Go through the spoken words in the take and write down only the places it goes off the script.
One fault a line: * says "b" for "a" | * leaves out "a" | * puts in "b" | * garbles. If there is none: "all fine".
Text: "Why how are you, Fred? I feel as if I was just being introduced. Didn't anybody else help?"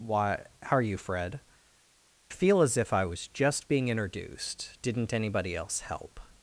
* leaves out "I"